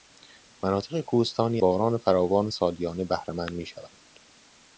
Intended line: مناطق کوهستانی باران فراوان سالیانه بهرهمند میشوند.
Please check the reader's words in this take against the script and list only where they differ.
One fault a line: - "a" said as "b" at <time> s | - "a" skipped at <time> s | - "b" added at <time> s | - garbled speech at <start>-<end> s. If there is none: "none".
none